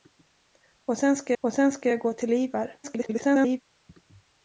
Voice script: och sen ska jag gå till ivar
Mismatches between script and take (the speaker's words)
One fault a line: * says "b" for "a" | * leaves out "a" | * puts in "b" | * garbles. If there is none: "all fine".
* puts in "och sen ska"
* garbles